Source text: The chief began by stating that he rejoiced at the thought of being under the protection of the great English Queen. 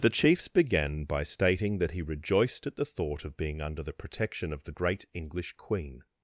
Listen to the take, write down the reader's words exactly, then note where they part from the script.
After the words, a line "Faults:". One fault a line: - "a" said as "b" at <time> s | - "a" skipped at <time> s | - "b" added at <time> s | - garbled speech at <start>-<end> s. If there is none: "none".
The chiefs began by stating that he rejoiced at the thought of being under the protection of the great English Queen.
Faults:
- "chief" said as "chiefs" at 0.1 s